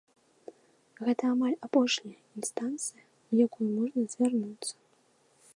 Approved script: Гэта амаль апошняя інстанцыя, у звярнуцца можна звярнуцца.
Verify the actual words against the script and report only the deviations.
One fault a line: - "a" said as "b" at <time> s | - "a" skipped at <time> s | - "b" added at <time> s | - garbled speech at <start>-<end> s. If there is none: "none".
- "звярнуцца" said as "якую" at 3.4 s